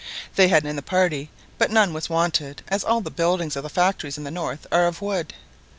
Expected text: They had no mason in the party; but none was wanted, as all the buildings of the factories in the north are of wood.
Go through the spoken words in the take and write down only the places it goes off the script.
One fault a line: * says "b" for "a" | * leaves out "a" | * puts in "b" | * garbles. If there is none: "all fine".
* leaves out "no mason"